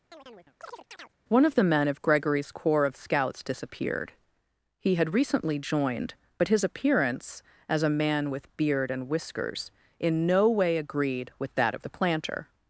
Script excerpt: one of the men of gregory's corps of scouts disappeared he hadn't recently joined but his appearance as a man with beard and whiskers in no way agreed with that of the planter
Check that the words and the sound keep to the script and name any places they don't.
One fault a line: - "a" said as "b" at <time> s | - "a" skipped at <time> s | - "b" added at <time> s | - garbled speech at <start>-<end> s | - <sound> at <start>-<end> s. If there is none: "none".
- chirp at 0.1-1.2 s
- "hadn't" said as "had" at 4.9 s